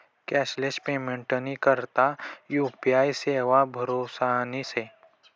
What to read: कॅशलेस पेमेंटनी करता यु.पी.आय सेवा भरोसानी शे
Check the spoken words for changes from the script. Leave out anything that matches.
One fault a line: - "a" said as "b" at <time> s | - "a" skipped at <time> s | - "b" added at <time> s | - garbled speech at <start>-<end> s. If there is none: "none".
none